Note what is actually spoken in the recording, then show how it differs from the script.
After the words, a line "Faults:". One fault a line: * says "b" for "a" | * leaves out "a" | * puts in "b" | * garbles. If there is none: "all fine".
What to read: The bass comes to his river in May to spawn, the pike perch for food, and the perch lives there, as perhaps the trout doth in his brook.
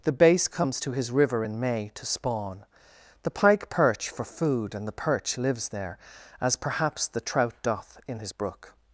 The bass comes to his river in May to spawn, the pike perch for food, and the perch lives there, as perhaps the trout doth in his brook.
Faults:
all fine